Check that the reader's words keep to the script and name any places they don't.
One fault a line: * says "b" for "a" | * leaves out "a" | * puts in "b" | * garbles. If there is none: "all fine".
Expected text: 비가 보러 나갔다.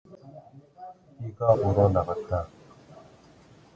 all fine